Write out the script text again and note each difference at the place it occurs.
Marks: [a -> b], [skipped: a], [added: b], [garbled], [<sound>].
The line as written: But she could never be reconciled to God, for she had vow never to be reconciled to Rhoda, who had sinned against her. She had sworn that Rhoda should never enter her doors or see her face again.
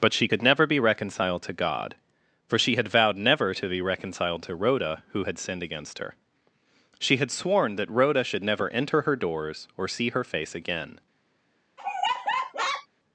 But she could never be reconciled to God, for she had [vow -> vowed] never to be reconciled to Rhoda, who had sinned against her. She had sworn that Rhoda should never enter her doors or see her face again. [laugh]